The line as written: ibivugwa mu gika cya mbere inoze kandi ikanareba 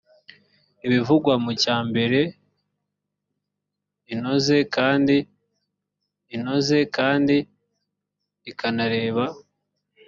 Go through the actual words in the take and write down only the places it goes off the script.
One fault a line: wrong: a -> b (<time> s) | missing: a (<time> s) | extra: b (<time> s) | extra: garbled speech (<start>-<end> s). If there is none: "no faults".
missing: gika (1.5 s)
extra: inoze kandi (6.3 s)